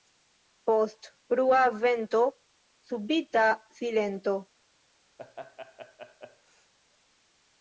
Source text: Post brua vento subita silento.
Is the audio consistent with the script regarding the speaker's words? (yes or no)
yes